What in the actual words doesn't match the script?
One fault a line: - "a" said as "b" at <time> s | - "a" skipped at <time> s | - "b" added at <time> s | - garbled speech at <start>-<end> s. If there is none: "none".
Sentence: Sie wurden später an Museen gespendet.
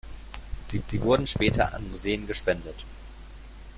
- "sie" added at 0.9 s